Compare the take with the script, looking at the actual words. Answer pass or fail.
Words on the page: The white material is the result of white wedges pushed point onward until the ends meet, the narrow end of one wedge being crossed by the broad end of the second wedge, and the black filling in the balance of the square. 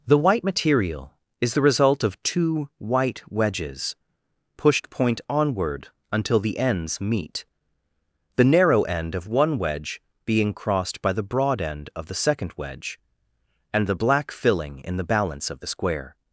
fail